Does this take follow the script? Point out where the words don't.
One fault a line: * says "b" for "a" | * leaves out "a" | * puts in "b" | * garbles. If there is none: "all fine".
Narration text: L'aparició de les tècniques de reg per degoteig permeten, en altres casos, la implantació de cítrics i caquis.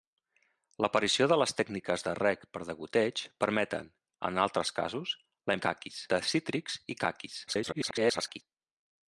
* says "caquis" for "implantació"
* garbles